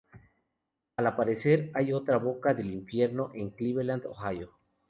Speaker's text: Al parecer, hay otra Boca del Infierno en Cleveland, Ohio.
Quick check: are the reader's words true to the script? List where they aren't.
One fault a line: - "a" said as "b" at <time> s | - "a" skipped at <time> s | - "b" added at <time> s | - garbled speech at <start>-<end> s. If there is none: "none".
none